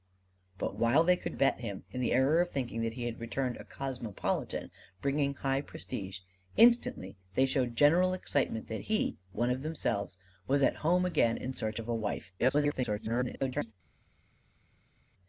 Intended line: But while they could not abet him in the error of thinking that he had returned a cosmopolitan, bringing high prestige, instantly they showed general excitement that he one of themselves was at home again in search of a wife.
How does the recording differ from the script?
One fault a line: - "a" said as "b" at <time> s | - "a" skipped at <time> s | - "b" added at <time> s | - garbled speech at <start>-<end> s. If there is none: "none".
- "not" skipped at 1.4 s
- garbled speech at 12.4-13.7 s